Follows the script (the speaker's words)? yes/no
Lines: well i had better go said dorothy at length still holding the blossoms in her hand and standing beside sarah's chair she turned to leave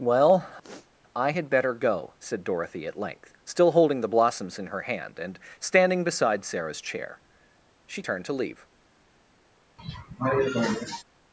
yes